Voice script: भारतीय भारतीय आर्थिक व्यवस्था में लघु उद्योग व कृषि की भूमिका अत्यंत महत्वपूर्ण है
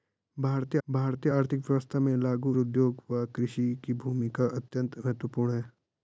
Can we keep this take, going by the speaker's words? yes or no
yes